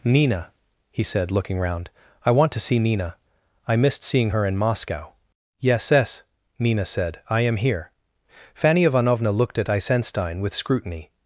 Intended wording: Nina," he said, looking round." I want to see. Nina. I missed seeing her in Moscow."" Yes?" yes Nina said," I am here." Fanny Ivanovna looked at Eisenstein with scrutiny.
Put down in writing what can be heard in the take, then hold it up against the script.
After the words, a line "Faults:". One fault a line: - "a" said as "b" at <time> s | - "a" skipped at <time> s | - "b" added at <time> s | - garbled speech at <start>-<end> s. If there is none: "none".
Nina," he said, looking round." I want to see. Nina. I missed seeing her in Moscow."" Yes?" yes Nina said," I am here." Fanny Ivanovna looked at Eisenstein with scrutiny.
Faults:
none